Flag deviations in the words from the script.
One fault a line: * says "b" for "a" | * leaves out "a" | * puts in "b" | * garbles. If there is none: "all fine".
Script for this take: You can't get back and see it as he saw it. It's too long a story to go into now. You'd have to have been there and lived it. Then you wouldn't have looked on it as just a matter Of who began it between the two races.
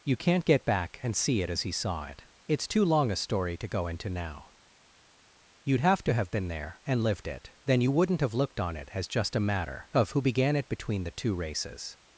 all fine